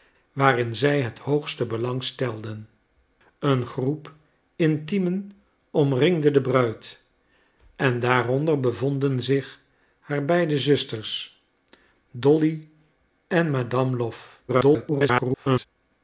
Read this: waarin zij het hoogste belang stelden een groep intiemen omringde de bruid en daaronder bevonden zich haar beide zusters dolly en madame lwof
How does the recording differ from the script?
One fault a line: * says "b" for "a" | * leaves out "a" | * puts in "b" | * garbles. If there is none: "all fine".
* garbles